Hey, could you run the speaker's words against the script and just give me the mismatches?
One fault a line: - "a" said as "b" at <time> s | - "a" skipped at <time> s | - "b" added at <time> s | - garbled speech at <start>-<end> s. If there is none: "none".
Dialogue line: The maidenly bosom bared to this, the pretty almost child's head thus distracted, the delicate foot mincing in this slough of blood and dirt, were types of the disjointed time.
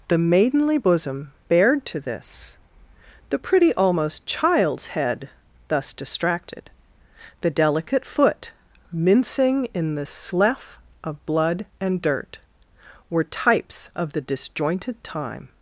- "this" said as "the" at 10.0 s